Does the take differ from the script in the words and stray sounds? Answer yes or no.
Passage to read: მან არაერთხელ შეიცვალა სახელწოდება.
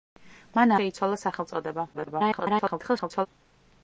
yes